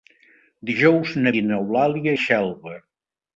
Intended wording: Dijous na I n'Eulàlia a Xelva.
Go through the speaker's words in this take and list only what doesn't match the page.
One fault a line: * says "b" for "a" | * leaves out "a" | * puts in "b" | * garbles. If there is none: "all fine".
all fine